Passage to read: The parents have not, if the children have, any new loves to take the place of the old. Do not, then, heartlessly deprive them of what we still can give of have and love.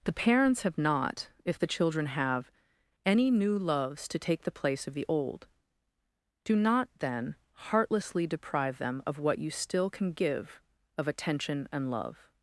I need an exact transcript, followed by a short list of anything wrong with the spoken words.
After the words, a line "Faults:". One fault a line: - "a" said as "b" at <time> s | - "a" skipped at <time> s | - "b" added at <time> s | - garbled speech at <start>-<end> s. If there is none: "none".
The parents have not, if the children have, any new loves to take the place of the old. Do not, then, heartlessly deprive them of what you still can give of attention and love.
Faults:
- "we" said as "you" at 9.4 s
- "have" said as "attention" at 11.1 s